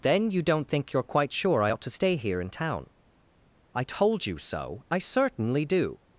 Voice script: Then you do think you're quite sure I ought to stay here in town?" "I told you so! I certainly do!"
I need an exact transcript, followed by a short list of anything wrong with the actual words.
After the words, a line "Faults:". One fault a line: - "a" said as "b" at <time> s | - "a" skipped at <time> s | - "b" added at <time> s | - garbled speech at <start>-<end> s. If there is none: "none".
Then you don't think you're quite sure I ought to stay here in town?" "I told you so! I certainly do!"
Faults:
- "do" said as "don't" at 0.4 s